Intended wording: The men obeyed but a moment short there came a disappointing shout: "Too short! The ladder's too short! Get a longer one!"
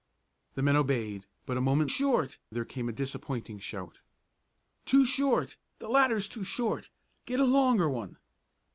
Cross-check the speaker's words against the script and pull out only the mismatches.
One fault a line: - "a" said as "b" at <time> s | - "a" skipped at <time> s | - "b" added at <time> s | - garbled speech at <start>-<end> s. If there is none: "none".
none